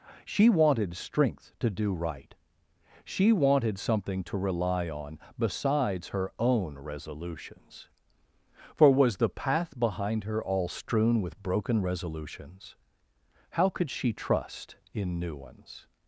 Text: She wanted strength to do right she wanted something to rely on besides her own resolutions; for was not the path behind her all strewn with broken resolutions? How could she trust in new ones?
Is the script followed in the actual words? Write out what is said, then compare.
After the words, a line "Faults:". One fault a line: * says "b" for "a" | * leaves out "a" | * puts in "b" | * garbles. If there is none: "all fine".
She wanted strength to do right she wanted something to rely on besides her own resolutions; for was the path behind her all strewn with broken resolutions? How could she trust in new ones?
Faults:
* leaves out "not"